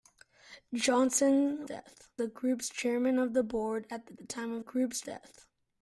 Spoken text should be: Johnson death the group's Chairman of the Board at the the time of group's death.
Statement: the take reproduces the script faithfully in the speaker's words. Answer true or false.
true